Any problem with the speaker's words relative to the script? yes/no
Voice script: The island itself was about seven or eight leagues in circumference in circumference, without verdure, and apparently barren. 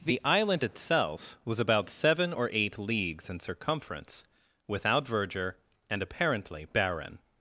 yes